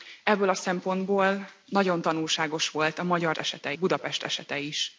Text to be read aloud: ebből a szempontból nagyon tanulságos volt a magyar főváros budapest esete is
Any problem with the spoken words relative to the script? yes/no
yes